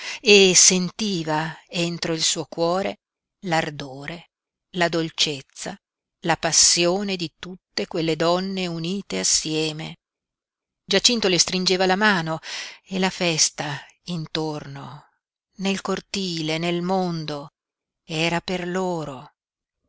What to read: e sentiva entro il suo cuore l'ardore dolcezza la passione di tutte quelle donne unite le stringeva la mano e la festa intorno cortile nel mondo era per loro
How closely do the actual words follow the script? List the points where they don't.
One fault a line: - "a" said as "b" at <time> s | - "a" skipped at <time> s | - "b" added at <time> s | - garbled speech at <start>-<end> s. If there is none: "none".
- "la" added at 4.8 s
- "assieme giacinto" added at 9.2 s
- "nel" added at 15.6 s